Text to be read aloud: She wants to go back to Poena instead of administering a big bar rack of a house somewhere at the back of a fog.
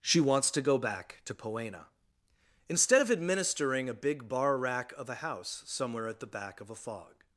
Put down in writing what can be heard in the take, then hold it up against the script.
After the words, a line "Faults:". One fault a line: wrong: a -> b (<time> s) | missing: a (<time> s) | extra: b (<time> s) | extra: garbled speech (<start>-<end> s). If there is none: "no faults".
She wants to go back to Poena instead of administering a big bar rack of a house somewhere at the back of a fog.
Faults:
no faults